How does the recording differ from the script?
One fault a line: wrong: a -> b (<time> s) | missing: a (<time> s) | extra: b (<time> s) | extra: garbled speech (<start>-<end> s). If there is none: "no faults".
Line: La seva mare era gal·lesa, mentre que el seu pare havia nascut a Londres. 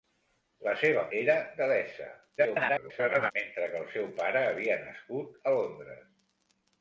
missing: mare (1.0 s)
extra: garbled speech (2.4-3.3 s)